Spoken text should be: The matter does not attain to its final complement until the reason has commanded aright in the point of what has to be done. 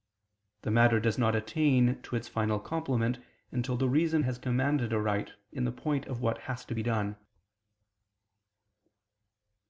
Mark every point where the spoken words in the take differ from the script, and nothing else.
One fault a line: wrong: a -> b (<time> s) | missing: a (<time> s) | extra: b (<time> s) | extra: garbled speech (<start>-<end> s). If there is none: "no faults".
no faults